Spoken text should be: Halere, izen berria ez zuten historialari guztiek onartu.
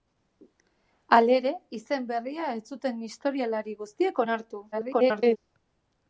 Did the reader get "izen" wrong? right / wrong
right